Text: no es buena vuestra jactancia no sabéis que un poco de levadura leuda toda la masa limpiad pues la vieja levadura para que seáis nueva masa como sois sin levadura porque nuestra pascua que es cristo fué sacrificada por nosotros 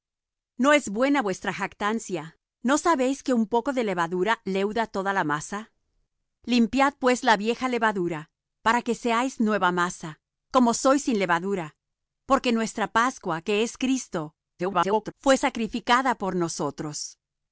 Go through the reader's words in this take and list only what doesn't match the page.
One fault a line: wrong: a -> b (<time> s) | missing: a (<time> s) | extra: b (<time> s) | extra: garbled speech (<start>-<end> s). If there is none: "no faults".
extra: garbled speech (14.6-15.1 s)